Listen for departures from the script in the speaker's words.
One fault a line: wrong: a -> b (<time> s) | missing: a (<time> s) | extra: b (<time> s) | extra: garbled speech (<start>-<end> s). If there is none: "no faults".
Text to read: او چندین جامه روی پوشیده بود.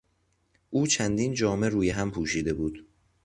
extra: هم (1.9 s)